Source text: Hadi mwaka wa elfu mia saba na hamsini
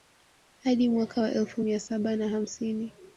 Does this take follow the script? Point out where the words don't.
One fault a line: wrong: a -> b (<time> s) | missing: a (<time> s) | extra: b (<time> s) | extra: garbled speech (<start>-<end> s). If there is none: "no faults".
no faults